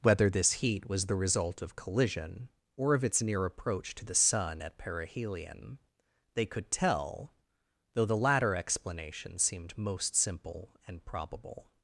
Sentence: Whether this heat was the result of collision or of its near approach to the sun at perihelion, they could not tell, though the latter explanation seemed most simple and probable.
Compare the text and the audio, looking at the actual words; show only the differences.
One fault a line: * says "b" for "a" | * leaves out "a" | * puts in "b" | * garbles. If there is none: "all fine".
* leaves out "not"